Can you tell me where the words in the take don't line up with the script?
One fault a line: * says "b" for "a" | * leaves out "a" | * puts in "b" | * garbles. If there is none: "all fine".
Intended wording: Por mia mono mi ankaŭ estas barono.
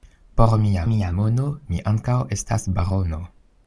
* puts in "mia"